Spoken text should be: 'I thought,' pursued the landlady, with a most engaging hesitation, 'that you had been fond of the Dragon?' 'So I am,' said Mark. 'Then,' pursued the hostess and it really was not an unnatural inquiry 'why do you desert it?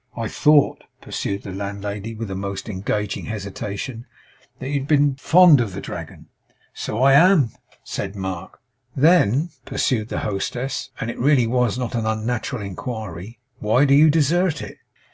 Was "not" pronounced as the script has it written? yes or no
yes